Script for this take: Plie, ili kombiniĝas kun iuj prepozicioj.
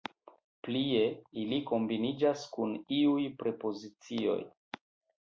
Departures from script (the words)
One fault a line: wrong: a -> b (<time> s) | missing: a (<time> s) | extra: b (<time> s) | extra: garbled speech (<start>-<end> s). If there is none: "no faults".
no faults